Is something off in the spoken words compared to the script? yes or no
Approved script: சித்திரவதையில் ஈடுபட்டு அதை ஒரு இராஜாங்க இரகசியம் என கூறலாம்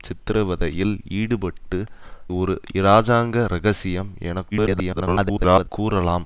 yes